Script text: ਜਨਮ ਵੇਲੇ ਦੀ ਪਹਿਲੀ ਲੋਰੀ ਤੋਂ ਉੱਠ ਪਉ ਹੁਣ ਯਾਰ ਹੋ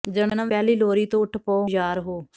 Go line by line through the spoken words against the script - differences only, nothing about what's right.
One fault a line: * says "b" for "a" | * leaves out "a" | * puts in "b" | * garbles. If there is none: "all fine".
* leaves out "ਵੇਲੇ ਦੀ"
* leaves out "ਹੁਣ"